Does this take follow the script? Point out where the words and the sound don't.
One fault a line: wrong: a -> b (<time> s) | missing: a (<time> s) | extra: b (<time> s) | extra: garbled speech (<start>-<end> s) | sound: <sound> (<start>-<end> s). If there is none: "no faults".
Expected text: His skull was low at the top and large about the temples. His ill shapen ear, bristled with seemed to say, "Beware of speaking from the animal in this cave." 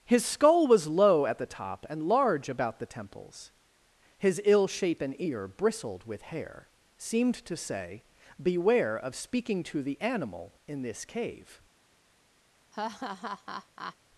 extra: hair (6.2 s)
wrong: from -> to (9.6 s)
sound: laugh (12.7-14.0 s)